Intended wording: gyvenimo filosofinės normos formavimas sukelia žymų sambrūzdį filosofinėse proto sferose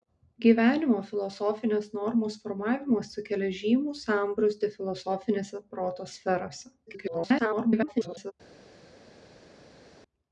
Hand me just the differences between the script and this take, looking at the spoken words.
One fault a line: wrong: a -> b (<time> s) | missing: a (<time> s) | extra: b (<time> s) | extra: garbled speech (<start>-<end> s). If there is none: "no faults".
extra: garbled speech (6.9-8.3 s)